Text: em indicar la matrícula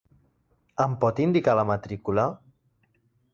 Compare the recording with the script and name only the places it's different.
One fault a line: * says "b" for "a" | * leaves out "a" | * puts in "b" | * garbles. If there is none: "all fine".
* puts in "pot"